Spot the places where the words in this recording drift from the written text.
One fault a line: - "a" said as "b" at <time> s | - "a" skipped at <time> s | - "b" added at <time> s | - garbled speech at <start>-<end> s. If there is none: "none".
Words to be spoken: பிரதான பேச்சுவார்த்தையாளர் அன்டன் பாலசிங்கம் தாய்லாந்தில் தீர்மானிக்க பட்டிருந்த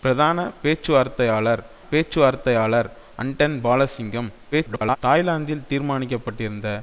- "பேச்சுவார்த்தையாளர்" added at 1.9 s
- garbled speech at 4.5-5.0 s